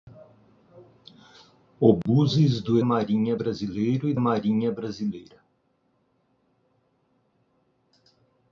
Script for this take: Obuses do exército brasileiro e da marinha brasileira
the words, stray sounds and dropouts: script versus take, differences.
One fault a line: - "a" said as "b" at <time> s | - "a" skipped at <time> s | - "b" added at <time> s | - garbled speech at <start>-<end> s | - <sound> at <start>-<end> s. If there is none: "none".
- dropout at 2.0-2.1 s
- "exército" said as "marinha" at 2.8 s
- "da" skipped at 4.1 s